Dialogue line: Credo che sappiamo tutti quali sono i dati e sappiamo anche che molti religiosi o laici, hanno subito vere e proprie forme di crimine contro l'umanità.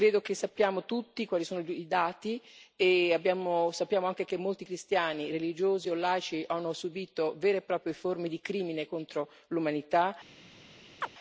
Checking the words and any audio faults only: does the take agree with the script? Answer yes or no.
no